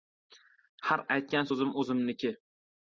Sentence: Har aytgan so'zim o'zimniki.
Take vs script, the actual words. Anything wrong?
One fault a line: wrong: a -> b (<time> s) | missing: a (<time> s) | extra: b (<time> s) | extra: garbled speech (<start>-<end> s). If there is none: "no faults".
no faults